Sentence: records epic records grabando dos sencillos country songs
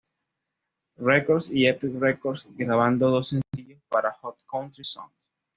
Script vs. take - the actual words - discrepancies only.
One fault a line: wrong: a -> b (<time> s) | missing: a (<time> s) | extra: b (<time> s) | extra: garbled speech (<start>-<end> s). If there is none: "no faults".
extra: y (1.5 s)
extra: para hot (3.9 s)